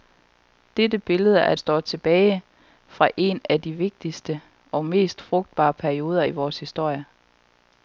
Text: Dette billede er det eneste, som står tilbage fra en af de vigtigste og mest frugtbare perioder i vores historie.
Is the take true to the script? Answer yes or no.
no